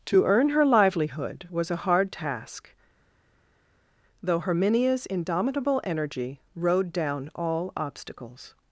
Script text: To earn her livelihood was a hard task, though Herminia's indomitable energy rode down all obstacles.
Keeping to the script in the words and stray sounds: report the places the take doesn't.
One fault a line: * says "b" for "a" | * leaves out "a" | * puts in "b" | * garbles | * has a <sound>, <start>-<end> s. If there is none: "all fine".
all fine